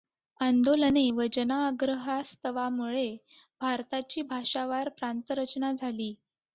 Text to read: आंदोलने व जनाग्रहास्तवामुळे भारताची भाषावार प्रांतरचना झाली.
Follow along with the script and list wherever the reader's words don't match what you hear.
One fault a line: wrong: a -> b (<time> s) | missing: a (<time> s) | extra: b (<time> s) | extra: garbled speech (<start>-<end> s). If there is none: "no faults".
no faults